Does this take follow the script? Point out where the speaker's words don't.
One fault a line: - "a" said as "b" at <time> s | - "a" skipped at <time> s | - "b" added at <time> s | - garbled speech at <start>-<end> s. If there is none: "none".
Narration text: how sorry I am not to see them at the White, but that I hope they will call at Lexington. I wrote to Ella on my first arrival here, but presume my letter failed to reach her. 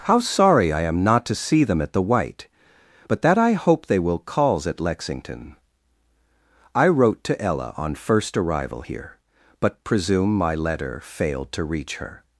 - "call" said as "calls" at 4.2 s
- "my" skipped at 8.0 s